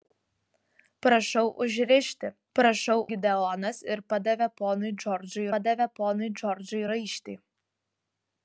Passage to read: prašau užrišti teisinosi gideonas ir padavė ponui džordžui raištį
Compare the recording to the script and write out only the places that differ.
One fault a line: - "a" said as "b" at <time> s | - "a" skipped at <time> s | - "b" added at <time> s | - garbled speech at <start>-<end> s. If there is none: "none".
- "teisinosi" said as "prašau" at 2.6 s
- "padavė ponui džordžui" added at 5.6 s